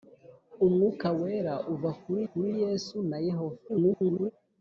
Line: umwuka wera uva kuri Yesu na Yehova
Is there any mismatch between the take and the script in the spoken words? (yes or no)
yes